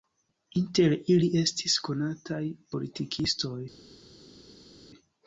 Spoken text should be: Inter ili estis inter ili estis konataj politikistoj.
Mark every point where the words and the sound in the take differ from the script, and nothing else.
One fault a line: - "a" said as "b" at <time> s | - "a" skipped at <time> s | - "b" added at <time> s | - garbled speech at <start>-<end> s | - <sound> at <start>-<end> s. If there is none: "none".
- "inter ili estis" skipped at 1.8 s